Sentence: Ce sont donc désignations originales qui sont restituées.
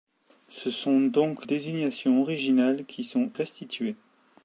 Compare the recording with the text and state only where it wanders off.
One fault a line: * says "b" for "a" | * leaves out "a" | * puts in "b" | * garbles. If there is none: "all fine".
all fine